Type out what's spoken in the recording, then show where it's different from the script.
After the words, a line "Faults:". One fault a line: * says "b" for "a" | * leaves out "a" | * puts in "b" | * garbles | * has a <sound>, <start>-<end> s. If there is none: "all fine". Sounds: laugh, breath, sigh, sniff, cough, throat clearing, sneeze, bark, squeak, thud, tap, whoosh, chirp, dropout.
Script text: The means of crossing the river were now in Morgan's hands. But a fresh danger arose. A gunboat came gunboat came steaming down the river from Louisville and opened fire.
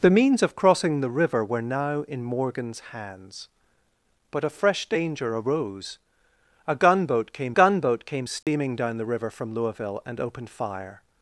The means of crossing the river were now in Morgan's hands. But a fresh danger arose. A gunboat came gunboat came steaming down the river from Louisville and opened fire.
Faults:
* has a dropout, 8.4-8.5 s